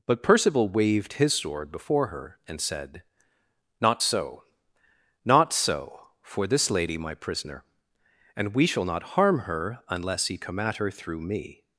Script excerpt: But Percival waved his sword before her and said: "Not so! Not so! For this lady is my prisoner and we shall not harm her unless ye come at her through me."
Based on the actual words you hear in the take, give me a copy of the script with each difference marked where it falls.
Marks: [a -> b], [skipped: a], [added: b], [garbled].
But Percival waved his sword before her and said: "Not so! Not so! For this lady [skipped: is] my prisoner and we shall not harm her unless ye come at her through me."